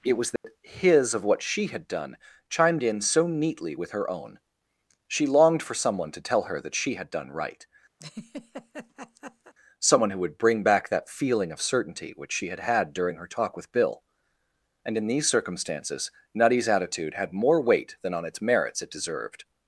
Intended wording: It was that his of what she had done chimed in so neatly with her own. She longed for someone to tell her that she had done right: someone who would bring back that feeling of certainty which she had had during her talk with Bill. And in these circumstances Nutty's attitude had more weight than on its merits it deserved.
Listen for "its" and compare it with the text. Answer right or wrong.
right